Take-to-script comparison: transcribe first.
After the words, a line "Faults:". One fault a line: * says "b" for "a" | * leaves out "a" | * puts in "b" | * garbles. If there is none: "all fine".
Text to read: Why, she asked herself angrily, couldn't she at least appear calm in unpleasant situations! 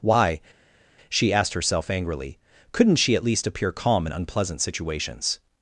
Why, she asked herself angrily, couldn't she at least appear calm in unpleasant situations!
Faults:
all fine